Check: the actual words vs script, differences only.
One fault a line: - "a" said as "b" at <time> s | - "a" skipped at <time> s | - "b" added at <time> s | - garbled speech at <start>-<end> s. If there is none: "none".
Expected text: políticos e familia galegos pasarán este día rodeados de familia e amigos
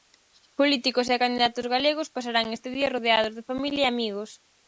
- "familia" said as "candidatos" at 1.2 s